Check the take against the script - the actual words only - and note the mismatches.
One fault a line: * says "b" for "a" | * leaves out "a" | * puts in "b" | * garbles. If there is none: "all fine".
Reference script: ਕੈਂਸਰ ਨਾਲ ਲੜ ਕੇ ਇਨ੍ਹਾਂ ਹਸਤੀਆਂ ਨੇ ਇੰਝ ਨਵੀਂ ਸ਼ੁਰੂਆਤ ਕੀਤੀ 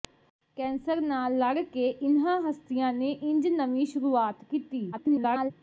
* garbles